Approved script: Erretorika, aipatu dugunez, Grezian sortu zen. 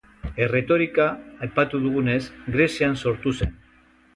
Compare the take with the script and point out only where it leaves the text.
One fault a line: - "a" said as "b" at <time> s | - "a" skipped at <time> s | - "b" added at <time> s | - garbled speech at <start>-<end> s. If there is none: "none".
none